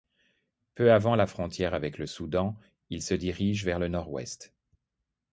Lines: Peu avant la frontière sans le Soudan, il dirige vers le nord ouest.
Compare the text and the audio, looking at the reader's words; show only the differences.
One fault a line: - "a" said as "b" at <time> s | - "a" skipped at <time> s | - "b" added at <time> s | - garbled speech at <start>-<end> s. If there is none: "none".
- "sans" said as "avec" at 1.8 s
- "se" added at 3.0 s